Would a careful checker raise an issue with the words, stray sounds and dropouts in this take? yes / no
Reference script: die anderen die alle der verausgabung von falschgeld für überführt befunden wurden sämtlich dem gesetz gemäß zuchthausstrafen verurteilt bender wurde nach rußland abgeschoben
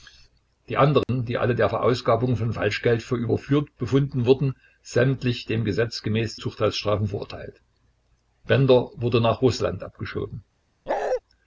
yes